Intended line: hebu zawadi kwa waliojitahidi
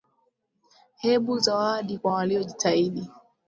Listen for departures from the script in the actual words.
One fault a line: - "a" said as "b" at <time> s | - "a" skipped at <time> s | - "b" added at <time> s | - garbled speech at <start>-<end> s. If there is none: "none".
none